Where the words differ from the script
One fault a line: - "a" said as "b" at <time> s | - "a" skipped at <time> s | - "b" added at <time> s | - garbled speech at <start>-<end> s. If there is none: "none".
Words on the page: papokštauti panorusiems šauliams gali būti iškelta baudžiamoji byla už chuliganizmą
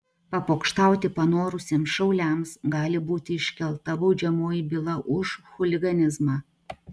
none